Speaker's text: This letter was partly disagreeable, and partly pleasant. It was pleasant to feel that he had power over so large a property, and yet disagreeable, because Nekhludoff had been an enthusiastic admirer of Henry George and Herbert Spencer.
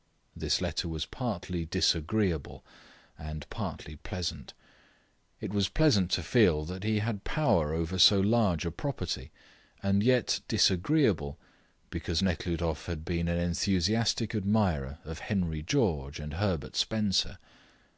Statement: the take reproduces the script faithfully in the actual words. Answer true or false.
true